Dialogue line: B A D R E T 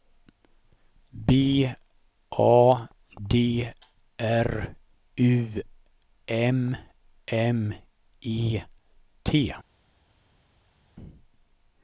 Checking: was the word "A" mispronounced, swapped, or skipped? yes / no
no